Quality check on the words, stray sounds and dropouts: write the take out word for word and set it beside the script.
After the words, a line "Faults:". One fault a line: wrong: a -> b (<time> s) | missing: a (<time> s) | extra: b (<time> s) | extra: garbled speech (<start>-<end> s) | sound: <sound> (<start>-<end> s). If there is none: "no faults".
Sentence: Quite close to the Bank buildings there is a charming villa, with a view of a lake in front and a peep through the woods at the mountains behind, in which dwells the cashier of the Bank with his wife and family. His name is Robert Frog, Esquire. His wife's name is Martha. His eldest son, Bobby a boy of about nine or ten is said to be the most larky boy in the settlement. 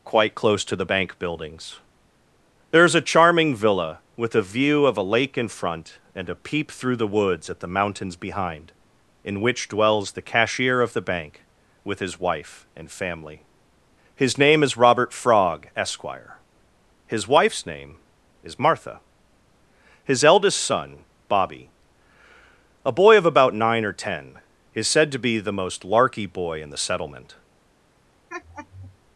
Quite close to the Bank buildings there is a charming villa, with a view of a lake in front and a peep through the woods at the mountains behind, in which dwells the cashier of the Bank with his wife and family. His name is Robert Frog, Esquire. His wife's name is Martha. His eldest son, Bobby a boy of about nine or ten is said to be the most larky boy in the settlement.
Faults:
sound: laugh (28.3-29.0 s)